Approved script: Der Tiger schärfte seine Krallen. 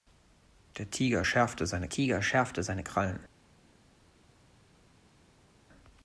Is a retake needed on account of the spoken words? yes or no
yes